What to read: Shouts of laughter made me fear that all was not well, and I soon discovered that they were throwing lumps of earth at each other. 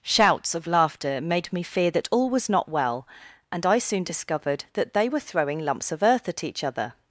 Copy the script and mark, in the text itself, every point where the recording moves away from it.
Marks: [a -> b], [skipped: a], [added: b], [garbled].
Shouts of laughter made me fear that all was not well, and I soon discovered that they were throwing lumps of earth at each other.